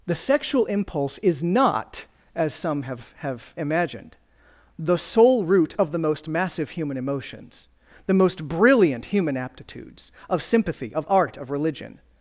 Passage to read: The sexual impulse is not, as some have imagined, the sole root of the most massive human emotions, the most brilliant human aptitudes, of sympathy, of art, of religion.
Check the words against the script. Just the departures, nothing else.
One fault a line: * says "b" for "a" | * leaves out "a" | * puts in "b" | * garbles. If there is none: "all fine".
* puts in "have"